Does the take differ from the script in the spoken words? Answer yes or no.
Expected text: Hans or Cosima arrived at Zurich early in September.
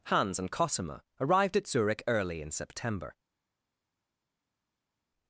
yes